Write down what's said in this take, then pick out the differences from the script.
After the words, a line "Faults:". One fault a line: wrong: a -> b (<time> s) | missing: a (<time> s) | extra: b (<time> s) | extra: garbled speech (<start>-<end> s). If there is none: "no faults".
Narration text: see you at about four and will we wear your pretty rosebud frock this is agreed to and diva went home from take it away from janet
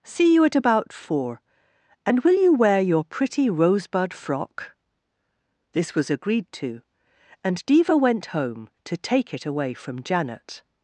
see you at about four and will you wear your pretty rosebud frock this was agreed to and diva went home to take it away from janet
Faults:
wrong: we -> you (2.3 s)
wrong: is -> was (5.9 s)
wrong: from -> to (8.8 s)